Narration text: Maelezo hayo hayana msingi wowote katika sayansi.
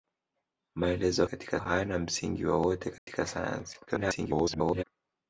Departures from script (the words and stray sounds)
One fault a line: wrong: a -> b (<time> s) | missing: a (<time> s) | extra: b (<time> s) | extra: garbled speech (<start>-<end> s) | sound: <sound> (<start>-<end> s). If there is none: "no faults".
wrong: hayo -> katika (1.2 s)
sound: dropout (3.0-3.1 s)
extra: garbled speech (3.9-4.8 s)